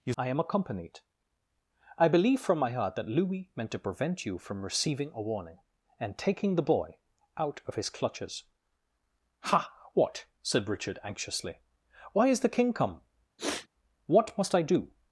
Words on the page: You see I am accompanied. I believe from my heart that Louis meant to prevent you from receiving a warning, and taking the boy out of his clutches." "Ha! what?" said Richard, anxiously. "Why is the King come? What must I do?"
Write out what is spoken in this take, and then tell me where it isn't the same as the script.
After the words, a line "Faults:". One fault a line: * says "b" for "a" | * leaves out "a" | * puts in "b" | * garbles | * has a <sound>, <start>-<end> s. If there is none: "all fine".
You I am accompanied. I believe from my heart that Louis meant to prevent you from receiving a warning, and taking the boy out of his clutches." "Ha! what?" said Richard, anxiously. "Why is the King come? What must I do?"
Faults:
* leaves out "see"
* has a sniff, 13.4-13.7 s